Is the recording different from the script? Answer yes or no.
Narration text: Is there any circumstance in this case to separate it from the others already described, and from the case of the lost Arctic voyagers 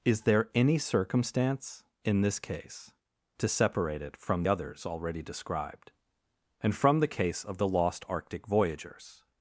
yes